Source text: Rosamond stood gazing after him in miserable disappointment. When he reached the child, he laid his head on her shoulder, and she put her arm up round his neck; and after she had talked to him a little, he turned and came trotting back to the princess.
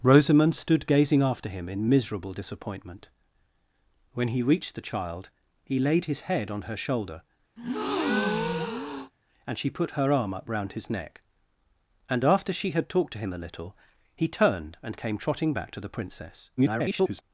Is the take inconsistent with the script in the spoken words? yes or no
yes